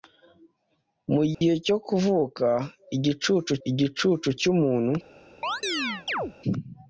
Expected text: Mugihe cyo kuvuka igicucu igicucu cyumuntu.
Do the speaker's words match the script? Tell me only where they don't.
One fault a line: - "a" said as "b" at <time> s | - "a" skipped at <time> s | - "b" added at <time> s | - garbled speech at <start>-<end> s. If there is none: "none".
none